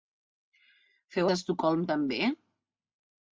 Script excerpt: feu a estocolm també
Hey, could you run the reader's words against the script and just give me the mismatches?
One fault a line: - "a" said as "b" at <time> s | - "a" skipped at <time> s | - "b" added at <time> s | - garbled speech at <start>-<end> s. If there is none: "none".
none